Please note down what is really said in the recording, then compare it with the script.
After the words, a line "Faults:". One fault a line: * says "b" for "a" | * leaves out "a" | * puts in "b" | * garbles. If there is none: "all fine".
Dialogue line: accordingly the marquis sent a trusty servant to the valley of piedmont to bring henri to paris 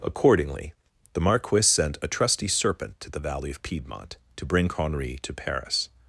accordingly the marquis sent a trusty serpent to the valley of piedmont to bring henri to paris
Faults:
* says "serpent" for "servant"